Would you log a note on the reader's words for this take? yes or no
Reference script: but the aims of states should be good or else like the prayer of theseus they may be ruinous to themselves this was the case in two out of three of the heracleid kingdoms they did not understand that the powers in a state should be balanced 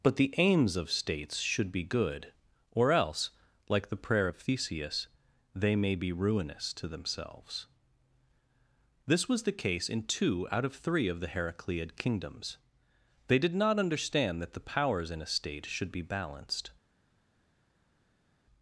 no